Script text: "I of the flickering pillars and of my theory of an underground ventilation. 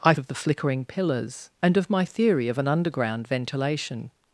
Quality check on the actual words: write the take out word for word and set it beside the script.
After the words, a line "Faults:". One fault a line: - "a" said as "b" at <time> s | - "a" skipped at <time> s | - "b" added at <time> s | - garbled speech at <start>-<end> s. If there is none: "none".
"I of the flickering pillars and of my theory of an underground ventilation.
Faults:
none